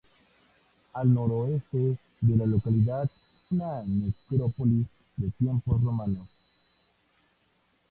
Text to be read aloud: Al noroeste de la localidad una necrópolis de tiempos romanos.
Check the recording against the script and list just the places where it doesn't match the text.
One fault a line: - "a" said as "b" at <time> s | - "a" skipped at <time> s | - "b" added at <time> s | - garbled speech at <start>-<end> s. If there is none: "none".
none